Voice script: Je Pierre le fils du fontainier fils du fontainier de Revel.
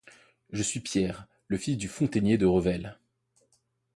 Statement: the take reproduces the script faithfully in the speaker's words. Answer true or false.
false